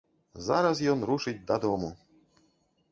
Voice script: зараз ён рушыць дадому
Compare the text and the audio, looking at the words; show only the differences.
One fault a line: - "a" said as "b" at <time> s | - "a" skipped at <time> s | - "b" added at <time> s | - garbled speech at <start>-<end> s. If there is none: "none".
none